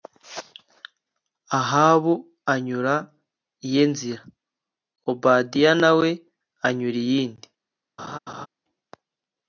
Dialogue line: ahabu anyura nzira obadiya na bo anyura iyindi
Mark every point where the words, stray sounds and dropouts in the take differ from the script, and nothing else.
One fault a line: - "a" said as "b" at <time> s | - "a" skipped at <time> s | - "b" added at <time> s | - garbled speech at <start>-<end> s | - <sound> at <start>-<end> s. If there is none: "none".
- "iye" added at 3.7 s
- "bo" said as "we" at 6.0 s
- laugh at 8.0-8.5 s